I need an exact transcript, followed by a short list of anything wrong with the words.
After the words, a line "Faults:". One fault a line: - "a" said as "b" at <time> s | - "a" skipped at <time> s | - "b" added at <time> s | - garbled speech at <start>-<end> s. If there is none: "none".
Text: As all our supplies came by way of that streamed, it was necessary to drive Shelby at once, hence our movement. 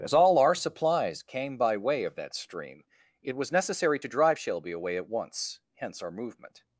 As all our supplies came by way of that stream, it was necessary to drive Shelby away at once, hence our movement.
Faults:
- "streamed" said as "stream" at 2.3 s
- "away" added at 4.7 s